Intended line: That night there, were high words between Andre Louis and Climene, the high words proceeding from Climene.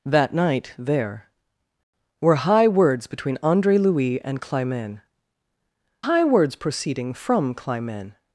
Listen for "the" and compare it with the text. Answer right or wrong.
wrong